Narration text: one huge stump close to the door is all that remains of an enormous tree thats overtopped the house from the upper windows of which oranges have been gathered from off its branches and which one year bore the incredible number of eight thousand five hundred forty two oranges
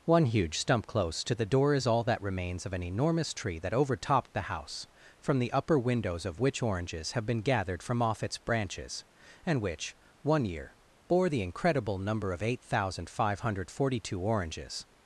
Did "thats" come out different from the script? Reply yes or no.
yes